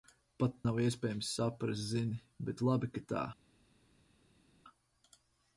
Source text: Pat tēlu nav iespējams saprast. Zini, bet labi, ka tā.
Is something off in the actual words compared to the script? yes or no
yes